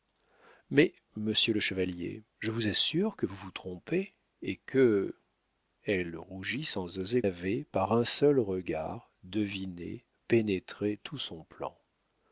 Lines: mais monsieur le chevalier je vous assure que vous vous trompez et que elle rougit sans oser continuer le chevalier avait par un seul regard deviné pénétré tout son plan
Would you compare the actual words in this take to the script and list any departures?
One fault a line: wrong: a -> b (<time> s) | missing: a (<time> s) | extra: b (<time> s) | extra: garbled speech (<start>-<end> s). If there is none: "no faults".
missing: continuer le chevalier (7.2 s)